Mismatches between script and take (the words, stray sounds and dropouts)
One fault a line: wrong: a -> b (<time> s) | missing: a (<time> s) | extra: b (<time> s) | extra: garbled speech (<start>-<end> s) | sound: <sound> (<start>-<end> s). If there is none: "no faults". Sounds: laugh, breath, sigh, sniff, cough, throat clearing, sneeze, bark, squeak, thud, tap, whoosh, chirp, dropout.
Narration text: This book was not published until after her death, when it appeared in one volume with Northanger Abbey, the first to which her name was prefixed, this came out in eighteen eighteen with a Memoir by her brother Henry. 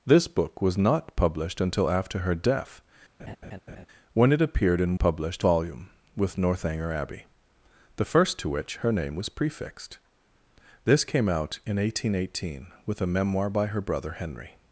sound: laugh (3.2-3.9 s)
wrong: one -> published (5.0 s)